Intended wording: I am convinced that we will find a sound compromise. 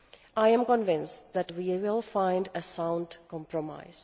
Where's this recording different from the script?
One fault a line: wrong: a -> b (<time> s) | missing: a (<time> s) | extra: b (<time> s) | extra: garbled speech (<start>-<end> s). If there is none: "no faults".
no faults